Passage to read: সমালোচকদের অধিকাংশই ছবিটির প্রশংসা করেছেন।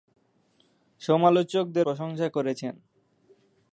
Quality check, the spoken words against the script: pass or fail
fail